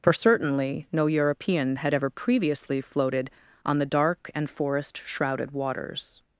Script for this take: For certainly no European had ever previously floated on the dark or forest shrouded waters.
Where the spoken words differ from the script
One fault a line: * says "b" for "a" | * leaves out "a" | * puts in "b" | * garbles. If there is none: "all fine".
* says "and" for "or"